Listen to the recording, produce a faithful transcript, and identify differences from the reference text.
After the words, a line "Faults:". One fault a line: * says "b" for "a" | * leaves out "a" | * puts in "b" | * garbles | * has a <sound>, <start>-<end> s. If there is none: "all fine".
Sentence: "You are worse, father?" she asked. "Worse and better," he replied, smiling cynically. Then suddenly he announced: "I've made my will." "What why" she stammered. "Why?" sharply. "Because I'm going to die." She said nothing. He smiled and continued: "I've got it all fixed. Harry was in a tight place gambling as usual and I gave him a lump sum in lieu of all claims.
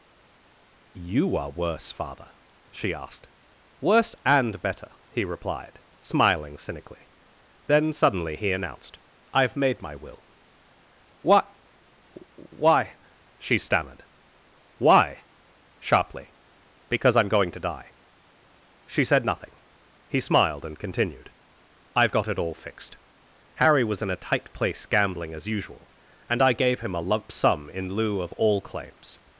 "You are worse, father?" she asked. "Worse and better," he replied, smiling cynically. Then suddenly he announced: "I've made my will." "What why" she stammered. "Why?" sharply. "Because I'm going to die." She said nothing. He smiled and continued: "I've got it all fixed. Harry was in a tight place gambling as usual and I gave him a lump sum in lieu of all claims.
Faults:
all fine